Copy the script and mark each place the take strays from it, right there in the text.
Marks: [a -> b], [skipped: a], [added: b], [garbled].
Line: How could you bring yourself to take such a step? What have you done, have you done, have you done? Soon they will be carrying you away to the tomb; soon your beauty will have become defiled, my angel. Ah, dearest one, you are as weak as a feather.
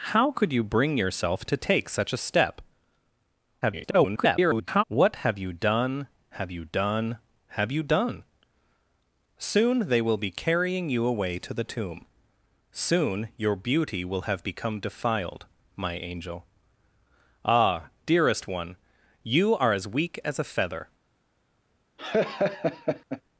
How could you bring yourself to take such a step? [garbled] What have you done, have you done, have you done? Soon they will be carrying you away to the tomb; soon your beauty will have become defiled, my angel. Ah, dearest one, you are as weak as a feather.